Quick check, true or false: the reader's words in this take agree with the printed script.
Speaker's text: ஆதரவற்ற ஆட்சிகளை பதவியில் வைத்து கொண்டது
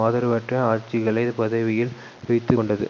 true